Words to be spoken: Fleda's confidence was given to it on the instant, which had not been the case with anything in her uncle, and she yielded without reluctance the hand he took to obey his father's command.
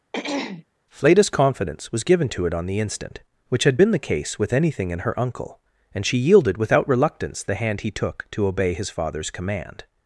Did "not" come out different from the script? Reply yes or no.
yes